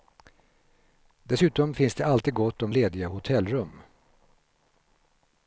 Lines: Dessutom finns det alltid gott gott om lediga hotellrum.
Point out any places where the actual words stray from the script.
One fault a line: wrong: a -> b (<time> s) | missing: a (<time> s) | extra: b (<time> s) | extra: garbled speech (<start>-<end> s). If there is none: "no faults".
missing: gott (2.6 s)